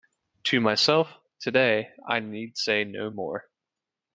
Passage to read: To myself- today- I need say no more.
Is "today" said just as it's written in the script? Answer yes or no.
yes